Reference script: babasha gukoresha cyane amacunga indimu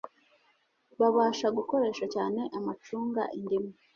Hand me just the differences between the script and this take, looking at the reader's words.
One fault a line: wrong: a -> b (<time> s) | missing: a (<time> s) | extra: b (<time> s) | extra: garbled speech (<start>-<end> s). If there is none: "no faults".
no faults